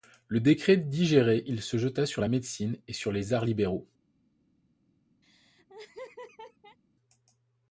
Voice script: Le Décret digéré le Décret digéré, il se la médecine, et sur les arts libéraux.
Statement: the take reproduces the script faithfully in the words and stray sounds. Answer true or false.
false